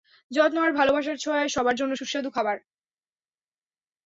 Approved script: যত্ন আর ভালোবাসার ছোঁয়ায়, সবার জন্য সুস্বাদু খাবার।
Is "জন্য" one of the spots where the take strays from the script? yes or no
no